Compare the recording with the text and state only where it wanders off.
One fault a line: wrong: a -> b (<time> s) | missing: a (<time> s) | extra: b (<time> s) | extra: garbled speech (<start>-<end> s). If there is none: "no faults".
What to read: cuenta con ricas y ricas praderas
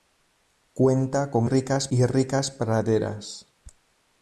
no faults